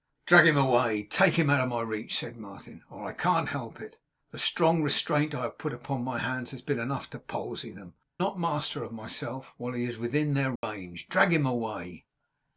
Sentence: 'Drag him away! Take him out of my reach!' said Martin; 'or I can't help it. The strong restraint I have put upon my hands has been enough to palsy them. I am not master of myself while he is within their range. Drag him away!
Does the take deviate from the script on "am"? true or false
true